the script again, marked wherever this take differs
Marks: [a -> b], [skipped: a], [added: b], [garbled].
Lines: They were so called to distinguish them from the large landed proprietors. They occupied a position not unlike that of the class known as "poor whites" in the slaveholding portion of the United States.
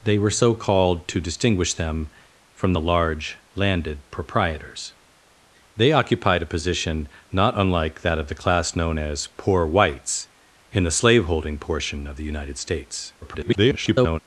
They were so called to distinguish them from the large landed proprietors. They occupied a position not unlike that of the class known as "poor whites" in the slaveholding portion of the United States. [garbled]